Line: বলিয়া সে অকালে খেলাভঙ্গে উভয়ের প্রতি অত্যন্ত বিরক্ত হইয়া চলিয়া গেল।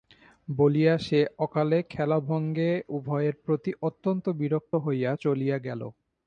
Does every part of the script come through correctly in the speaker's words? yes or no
yes